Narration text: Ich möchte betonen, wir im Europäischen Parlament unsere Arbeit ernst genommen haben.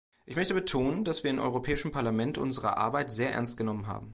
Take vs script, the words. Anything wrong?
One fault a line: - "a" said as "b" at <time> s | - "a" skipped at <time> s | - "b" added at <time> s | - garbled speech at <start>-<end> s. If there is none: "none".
- "dass" added at 1.0 s
- "sehr" added at 3.1 s